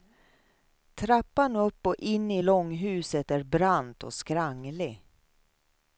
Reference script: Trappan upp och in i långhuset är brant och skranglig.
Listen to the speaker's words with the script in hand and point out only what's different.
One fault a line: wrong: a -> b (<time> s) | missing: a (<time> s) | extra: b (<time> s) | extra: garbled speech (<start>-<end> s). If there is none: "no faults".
no faults